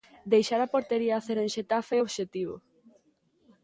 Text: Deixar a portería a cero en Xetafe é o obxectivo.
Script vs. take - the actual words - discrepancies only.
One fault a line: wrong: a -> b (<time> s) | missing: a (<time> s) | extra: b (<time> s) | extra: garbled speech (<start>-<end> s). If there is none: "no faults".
no faults